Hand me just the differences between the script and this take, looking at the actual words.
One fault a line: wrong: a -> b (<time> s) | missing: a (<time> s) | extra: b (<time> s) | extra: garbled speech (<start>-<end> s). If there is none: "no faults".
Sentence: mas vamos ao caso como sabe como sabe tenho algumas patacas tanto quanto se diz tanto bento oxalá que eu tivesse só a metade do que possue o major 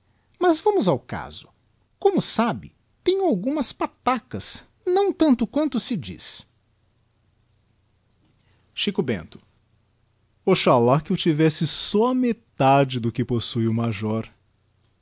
missing: como sabe (2.8 s)
extra: não (4.8 s)
wrong: tanto -> xico (8.7 s)